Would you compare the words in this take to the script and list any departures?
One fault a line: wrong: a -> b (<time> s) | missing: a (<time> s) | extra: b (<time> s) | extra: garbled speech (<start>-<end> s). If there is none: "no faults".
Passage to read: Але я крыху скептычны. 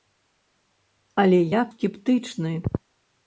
missing: крыху (1.6 s)